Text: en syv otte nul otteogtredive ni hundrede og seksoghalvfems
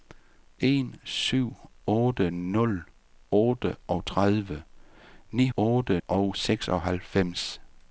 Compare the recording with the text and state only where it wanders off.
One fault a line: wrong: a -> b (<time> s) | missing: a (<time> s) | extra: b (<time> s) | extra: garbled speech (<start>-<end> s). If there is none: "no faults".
wrong: hundrede -> otte (5.6 s)